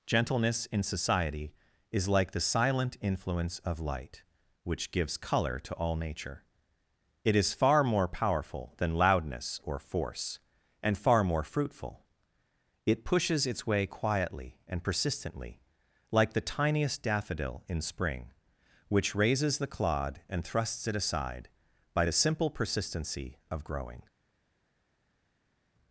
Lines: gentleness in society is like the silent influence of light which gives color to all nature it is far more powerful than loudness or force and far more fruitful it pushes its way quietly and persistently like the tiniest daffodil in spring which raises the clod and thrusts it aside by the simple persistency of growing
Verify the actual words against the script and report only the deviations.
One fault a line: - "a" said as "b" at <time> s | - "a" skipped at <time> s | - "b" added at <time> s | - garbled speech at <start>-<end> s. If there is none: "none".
none